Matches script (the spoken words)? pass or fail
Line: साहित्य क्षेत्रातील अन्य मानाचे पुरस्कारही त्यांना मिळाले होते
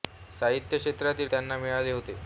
fail